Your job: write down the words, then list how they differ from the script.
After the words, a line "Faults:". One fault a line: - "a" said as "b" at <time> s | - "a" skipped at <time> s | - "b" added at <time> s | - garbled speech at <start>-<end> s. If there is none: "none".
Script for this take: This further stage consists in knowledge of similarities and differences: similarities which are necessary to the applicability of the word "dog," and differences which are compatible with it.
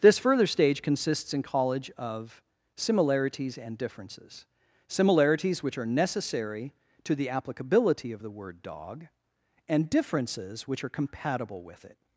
This further stage consists in college of similarities and differences: similarities which are necessary to the applicability of the word "dog," and differences which are compatible with it.
Faults:
- "knowledge" said as "college" at 1.4 s